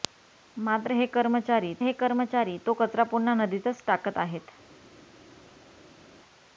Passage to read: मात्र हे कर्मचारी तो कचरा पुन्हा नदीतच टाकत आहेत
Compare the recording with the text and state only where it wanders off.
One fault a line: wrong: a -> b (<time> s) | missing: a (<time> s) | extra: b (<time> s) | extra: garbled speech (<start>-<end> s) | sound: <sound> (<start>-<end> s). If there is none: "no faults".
extra: हे कर्मचारी (1.8 s)